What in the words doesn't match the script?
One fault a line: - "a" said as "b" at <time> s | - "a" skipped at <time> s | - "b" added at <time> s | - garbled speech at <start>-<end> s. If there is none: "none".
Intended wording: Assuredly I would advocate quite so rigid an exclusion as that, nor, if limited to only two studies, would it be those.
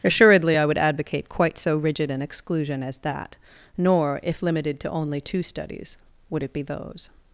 none